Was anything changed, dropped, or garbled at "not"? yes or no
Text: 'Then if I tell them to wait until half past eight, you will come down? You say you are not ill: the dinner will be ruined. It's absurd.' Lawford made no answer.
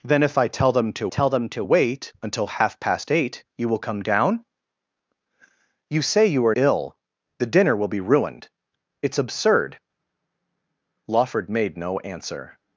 yes